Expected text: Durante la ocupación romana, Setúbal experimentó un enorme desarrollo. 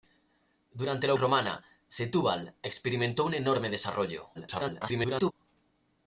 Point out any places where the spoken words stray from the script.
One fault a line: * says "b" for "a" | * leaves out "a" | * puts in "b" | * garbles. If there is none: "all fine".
* leaves out "ocupación"
* garbles